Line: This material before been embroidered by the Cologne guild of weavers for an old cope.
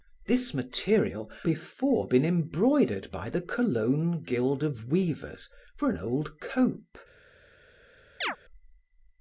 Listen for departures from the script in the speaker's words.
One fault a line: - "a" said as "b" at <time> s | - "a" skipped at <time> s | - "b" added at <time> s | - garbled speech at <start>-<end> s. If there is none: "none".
none